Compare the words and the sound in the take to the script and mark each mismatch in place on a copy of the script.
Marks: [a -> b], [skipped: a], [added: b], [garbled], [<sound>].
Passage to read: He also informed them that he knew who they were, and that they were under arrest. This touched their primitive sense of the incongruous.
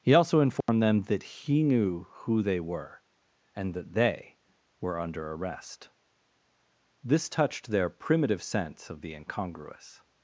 He also informed [dropout] them that he knew who they were, and that they were under arrest. This touched their primitive sense of the incongruous.